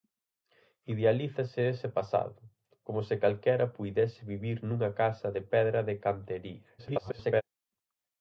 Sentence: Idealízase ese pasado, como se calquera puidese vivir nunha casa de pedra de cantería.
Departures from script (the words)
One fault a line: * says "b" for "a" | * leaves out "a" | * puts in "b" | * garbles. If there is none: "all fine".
* garbles